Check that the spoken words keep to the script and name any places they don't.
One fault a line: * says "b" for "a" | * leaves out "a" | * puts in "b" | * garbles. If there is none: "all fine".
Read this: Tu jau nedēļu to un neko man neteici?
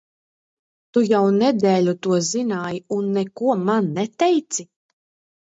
* puts in "zināji"